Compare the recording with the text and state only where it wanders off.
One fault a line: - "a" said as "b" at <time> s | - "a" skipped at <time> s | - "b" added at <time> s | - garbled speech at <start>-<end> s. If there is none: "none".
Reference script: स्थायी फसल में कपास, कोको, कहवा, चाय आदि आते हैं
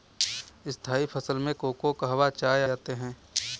- "कपास" skipped at 1.5 s
- "आदि" skipped at 2.6 s